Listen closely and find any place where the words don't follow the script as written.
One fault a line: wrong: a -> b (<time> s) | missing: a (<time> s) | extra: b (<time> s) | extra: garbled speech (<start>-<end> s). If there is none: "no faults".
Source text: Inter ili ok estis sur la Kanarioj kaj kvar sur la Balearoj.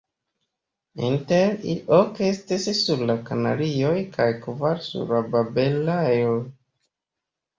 no faults